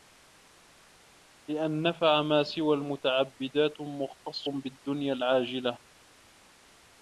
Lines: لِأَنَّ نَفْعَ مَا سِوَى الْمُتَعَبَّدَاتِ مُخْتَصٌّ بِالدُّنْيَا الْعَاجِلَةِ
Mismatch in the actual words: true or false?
false